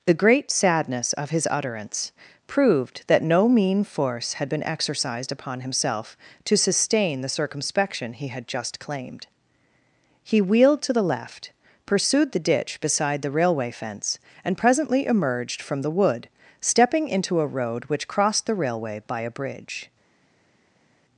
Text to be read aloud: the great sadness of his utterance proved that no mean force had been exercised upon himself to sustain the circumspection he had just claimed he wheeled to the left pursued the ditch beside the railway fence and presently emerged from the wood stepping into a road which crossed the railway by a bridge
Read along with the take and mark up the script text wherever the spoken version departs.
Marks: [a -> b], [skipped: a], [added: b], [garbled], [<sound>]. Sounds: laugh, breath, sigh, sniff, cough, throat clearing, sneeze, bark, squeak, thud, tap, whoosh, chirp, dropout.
the great sadness of his utterance proved that no mean force had been exercised upon himself to sustain the circumspection he had just claimed he wheeled to the left pursued the ditch beside the railway fence and presently emerged from the wood stepping into a road which crossed the railway by a bridge